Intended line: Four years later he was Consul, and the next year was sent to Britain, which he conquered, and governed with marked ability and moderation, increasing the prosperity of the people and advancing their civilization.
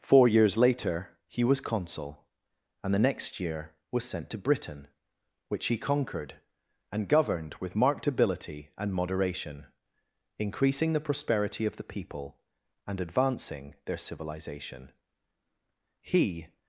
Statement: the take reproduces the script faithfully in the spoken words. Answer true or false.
false